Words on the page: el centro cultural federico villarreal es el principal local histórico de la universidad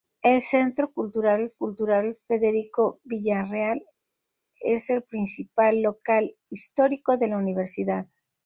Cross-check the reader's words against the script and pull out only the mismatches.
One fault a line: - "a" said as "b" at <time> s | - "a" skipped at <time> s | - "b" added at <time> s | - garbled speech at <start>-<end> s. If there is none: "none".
- "cultural" added at 1.5 s